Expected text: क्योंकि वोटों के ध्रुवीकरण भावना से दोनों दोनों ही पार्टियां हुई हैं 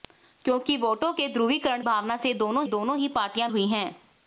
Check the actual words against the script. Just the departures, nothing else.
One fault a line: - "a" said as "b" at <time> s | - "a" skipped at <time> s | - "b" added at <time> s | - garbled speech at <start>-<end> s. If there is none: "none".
none